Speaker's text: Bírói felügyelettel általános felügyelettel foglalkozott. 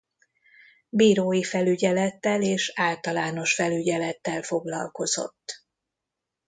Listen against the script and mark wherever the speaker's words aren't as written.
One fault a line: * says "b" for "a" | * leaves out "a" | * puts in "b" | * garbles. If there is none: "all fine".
* puts in "és"